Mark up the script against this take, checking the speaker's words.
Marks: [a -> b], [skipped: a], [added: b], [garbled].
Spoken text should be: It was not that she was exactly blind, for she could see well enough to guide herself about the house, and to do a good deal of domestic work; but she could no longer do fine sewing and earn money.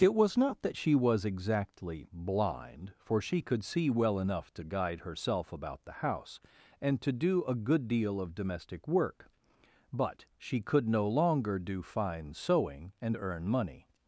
It was not that she was exactly blind, for she could see well enough to guide herself about the house, and to do a good deal of domestic work; but she could no longer do fine sewing and earn money.